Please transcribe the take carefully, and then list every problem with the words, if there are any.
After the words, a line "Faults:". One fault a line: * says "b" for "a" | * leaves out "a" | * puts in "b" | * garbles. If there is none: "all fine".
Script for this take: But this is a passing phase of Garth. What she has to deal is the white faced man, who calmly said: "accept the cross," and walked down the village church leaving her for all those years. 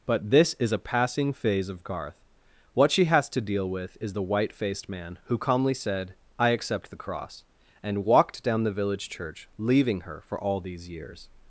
But this is a passing phase of Garth. What she has to deal with is the white faced man, who calmly said: "I accept the cross," and walked down the village church leaving her for all these years.
Faults:
* puts in "with"
* puts in "I"
* says "these" for "those"